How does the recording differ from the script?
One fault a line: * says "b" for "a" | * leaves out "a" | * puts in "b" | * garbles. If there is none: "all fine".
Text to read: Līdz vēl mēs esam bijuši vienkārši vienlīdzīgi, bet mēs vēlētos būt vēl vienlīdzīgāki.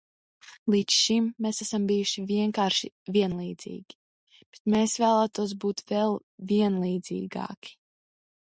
* says "šim" for "vēl"